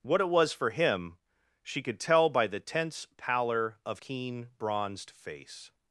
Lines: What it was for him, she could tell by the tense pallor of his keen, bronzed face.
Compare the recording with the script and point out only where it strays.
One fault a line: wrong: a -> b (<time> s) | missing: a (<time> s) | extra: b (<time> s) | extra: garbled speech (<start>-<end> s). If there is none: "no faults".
missing: his (4.0 s)